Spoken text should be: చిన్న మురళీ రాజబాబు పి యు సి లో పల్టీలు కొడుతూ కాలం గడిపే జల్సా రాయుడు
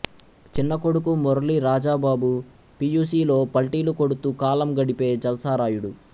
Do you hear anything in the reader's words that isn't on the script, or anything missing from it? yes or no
yes